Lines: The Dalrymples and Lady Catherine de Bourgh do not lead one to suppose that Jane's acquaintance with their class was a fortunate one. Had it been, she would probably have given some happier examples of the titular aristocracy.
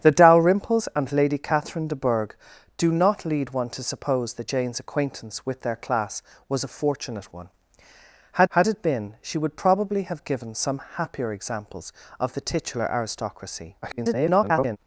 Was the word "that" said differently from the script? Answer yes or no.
no